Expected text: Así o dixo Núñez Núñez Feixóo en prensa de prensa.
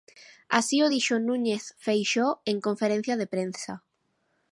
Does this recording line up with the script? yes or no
no